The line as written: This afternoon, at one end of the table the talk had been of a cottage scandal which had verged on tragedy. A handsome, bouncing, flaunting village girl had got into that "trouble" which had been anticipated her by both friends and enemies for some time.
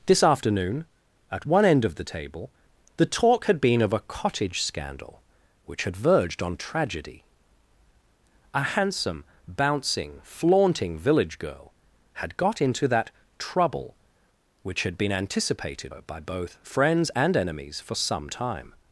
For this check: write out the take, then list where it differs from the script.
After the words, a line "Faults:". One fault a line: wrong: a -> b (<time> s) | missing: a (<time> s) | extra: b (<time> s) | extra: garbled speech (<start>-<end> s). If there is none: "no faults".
This afternoon, at one end of the table the talk had been of a cottage scandal which had verged on tragedy. A handsome, bouncing, flaunting village girl had got into that "trouble" which had been anticipated her by both friends and enemies for some time.
Faults:
no faults